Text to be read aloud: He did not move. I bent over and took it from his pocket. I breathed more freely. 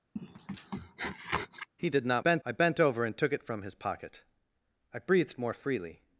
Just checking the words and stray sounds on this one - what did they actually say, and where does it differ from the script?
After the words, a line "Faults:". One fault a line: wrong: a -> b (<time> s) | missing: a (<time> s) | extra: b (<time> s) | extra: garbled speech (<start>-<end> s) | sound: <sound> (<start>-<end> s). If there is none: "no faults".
He did not bent. I bent over and took it from his pocket. I breathed more freely.
Faults:
sound: sniff (0.2-1.7 s)
wrong: move -> bent (2.2 s)